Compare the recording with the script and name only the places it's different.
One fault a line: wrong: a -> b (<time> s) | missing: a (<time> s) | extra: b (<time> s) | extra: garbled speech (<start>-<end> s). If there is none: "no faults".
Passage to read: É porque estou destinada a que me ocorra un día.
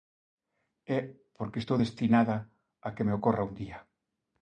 no faults